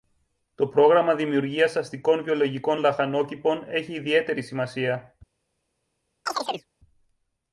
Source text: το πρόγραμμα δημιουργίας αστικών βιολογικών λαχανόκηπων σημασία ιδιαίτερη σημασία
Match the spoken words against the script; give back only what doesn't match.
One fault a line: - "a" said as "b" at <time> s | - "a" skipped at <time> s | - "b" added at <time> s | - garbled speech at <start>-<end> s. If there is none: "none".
- "σημασία" said as "έχει" at 3.7 s